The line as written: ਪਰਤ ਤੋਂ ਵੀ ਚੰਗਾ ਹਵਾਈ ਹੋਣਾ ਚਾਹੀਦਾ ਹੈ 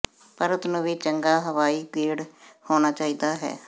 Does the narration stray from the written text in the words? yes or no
yes